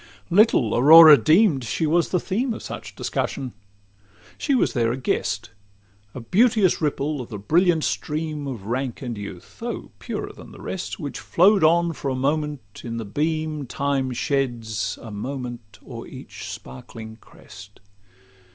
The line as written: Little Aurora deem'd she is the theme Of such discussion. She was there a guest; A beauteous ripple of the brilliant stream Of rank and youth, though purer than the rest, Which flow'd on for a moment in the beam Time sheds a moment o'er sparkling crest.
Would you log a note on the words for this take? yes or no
yes